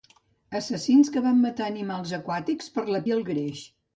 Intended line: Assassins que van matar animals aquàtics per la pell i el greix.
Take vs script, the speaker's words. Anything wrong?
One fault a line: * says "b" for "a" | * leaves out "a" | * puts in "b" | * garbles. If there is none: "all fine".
* leaves out "pell"